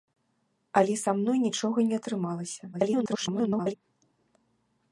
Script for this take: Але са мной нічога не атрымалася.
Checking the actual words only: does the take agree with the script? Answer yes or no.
no